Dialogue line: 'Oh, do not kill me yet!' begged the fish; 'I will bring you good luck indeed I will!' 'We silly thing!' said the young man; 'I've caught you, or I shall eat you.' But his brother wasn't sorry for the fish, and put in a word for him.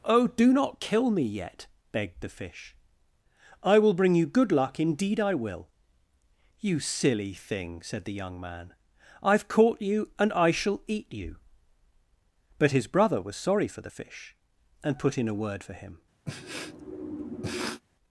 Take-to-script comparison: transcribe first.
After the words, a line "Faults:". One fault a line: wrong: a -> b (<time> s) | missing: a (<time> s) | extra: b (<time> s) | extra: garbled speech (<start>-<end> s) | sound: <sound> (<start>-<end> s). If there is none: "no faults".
'Oh, do not kill me yet!' begged the fish; 'I will bring you good luck indeed I will!' 'You silly thing!' said the young man; 'I've caught you, and I shall eat you.' But his brother was sorry for the fish, and put in a word for him.
Faults:
wrong: We -> You (6.6 s)
wrong: or -> and (10.2 s)
wrong: wasn't -> was (13.2 s)
sound: sniff (16.3-17.8 s)